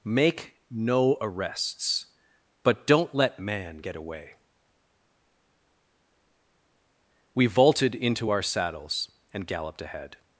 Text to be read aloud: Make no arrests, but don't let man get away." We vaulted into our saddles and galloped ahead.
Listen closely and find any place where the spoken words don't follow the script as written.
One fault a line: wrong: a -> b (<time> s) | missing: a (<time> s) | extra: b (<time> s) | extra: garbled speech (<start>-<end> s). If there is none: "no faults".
no faults